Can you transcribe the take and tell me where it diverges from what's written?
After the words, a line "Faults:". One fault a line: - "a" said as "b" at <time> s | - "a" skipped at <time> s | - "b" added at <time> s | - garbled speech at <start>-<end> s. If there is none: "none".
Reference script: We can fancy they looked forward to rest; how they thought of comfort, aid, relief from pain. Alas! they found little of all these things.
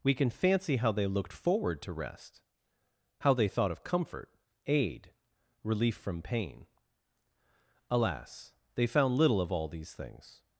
We can fancy how they looked forward to rest; how they thought of comfort, aid, relief from pain. Alas! they found little of all these things.
Faults:
- "how" added at 0.8 s